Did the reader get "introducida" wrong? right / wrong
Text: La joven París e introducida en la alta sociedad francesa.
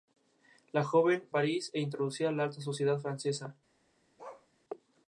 right